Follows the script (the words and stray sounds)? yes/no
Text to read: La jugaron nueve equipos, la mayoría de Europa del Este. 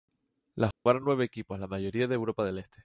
no